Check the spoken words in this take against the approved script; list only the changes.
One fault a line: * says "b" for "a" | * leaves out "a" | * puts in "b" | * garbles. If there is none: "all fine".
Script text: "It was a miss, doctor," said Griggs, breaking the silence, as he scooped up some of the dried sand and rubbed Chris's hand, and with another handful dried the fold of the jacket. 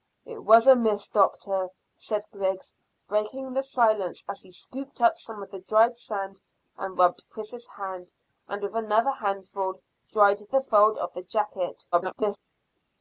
* garbles